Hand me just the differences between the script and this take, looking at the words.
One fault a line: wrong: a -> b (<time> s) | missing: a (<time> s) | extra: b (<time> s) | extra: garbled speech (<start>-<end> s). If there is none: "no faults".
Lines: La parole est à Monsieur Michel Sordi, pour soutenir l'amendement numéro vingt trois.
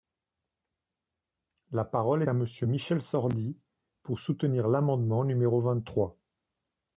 missing: est (2.2 s)